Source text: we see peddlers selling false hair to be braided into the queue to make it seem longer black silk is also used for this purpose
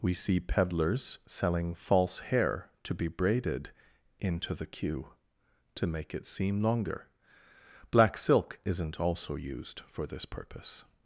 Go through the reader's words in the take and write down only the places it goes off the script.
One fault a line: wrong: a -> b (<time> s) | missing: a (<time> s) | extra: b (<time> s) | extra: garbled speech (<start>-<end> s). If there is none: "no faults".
wrong: is -> isn't (8.7 s)